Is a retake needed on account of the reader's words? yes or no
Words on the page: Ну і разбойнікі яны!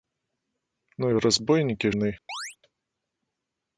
no